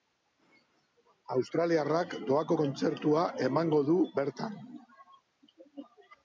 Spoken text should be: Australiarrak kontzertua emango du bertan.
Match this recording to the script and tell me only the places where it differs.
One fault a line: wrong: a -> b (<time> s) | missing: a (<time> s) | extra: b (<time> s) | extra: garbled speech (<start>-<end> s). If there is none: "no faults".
extra: doako (2.3 s)